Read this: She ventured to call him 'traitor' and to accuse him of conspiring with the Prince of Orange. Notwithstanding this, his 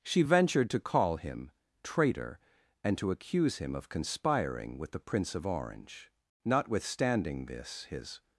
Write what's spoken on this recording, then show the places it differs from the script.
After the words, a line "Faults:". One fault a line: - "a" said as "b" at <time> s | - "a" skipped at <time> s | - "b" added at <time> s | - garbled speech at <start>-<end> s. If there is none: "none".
She ventured to call him 'traitor' and to accuse him of conspiring with the Prince of Orange. Notwithstanding this, his
Faults:
none